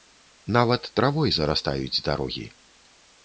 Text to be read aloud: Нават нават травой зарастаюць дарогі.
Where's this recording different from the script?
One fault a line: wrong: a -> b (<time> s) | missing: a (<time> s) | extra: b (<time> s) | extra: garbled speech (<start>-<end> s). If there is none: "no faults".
missing: нават (0.9 s)